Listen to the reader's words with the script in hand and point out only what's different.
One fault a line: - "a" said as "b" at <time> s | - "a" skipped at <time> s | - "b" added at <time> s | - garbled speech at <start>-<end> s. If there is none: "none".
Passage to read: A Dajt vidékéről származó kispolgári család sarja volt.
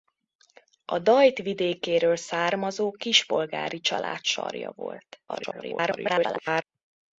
- garbled speech at 5.3-6.6 s